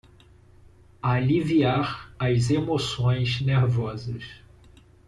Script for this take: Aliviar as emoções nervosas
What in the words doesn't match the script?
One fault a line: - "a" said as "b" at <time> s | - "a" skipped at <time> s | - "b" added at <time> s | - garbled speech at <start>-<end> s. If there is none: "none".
none